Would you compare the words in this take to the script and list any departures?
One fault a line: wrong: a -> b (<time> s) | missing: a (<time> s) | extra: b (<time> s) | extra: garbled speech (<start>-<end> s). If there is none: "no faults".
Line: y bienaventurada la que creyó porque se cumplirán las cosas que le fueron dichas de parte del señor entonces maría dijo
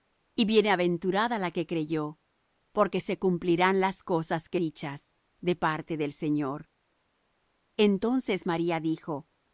missing: le fueron (4.6 s)